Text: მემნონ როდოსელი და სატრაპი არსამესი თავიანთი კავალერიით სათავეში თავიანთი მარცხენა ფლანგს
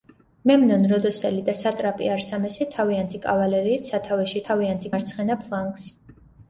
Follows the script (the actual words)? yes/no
yes